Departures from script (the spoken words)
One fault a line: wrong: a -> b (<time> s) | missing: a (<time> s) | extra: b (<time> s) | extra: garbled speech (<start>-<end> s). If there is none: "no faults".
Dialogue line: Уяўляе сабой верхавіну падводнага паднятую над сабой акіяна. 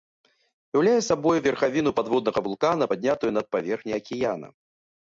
extra: вулкана (2.5 s)
wrong: сабой -> паверхняй (3.6 s)